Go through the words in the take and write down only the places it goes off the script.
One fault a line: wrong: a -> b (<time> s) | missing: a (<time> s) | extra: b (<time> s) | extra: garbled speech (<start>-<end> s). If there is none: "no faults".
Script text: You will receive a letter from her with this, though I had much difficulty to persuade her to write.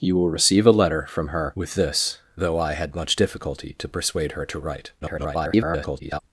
extra: garbled speech (5.0-6.2 s)